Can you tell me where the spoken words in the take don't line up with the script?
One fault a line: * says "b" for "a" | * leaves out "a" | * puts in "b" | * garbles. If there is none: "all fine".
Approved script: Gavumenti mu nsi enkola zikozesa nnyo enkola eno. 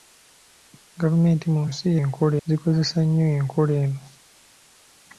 all fine